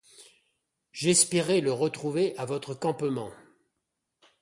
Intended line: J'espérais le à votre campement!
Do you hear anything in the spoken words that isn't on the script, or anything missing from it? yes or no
yes